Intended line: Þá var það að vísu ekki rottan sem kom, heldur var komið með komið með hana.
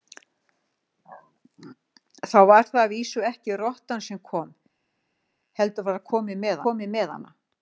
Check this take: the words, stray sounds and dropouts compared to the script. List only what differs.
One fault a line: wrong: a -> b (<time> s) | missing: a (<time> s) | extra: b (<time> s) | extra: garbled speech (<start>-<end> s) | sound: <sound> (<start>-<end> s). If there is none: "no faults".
no faults